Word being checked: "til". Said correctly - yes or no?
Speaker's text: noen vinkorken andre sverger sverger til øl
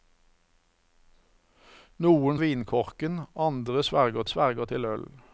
yes